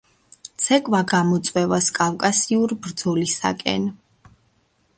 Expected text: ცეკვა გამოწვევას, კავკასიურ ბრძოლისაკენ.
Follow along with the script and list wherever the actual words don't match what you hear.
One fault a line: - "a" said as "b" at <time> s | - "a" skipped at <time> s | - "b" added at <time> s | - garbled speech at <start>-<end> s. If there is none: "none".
none